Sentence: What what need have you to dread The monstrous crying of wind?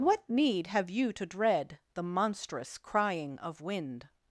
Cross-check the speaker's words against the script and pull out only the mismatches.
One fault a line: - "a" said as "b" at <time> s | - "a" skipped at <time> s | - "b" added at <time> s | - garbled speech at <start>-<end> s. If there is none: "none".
- "what" skipped at 0.3 s